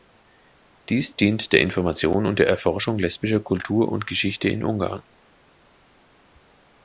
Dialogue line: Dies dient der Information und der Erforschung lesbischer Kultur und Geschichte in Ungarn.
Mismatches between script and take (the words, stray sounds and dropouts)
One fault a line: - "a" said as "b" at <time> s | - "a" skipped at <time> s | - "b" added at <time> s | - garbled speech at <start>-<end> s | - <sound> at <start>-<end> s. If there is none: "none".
none